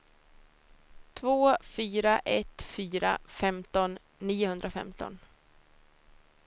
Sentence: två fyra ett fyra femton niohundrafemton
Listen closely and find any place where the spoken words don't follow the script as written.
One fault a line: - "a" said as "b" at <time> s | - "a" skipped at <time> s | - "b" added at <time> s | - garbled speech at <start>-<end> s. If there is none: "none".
none